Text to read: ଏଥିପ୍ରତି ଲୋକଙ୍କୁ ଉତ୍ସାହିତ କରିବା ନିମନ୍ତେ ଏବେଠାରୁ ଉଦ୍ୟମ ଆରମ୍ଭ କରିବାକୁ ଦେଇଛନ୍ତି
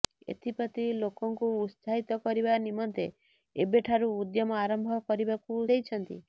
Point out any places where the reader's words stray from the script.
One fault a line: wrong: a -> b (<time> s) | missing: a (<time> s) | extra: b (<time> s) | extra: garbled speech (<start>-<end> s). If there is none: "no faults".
no faults